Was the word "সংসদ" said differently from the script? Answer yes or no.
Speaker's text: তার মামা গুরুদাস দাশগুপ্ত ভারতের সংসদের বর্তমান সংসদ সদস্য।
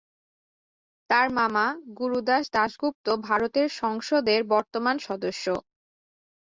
yes